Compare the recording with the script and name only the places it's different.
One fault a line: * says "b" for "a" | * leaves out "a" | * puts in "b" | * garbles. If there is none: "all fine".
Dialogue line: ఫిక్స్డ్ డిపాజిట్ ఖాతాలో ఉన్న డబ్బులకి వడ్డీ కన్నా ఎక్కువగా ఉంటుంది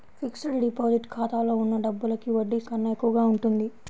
all fine